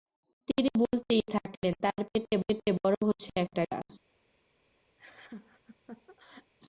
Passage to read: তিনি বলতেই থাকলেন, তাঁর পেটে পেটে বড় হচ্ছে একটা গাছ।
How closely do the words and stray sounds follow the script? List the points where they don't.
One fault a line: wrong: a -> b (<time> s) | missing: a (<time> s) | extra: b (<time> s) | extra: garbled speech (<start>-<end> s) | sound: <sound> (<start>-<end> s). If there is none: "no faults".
sound: laugh (5.0-6.5 s)